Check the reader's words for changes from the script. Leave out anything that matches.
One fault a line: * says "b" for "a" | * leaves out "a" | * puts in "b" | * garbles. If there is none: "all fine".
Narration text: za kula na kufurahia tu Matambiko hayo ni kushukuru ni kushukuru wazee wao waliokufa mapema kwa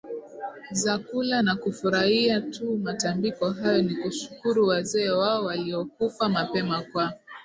* leaves out "ni kushukuru"